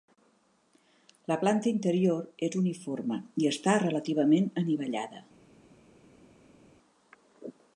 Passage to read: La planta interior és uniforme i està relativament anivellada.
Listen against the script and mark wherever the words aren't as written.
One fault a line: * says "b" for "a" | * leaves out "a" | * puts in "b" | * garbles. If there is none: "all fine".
all fine